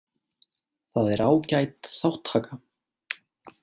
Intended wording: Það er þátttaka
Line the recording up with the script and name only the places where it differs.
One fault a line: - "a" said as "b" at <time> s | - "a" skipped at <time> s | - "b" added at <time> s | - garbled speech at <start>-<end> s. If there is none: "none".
- "ágæt" added at 1.2 s